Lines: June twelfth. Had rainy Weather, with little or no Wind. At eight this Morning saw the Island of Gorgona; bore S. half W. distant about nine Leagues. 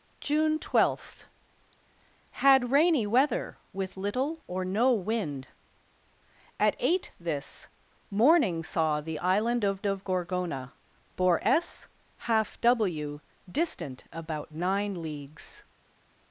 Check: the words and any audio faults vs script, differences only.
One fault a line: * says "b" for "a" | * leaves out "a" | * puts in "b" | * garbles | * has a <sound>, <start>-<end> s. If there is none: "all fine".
* puts in "of"